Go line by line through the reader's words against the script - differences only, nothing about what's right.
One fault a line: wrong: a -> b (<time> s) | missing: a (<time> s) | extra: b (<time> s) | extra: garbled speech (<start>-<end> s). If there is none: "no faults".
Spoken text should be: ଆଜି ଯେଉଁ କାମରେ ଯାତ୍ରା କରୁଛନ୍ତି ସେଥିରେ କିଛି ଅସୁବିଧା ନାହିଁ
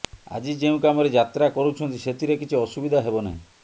extra: ହେବ (3.1 s)